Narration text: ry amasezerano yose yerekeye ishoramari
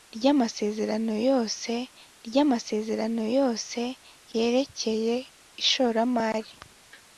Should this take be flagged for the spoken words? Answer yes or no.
yes